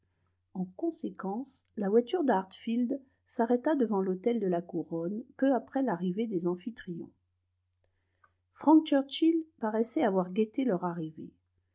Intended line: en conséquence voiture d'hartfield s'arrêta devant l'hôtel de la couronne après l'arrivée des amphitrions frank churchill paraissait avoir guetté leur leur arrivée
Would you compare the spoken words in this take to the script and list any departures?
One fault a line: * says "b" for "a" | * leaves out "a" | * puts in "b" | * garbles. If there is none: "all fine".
* puts in "la"
* puts in "peu"
* leaves out "leur"